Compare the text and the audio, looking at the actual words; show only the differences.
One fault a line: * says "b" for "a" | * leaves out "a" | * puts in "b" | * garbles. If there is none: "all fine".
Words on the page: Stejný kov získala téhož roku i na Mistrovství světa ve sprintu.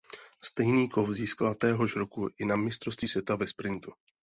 all fine